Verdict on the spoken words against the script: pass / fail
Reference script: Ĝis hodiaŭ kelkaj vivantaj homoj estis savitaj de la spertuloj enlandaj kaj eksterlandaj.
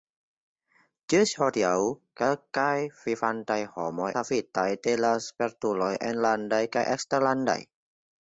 fail